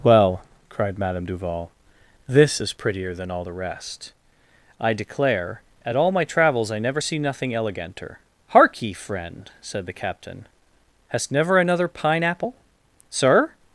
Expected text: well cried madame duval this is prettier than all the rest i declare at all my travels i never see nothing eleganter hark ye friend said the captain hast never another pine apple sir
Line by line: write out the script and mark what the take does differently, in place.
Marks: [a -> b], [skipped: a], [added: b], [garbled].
well cried madame duval this is prettier than all the rest i declare at all my travels i never see nothing eleganter hark ye friend said the captain hast never another pine apple sir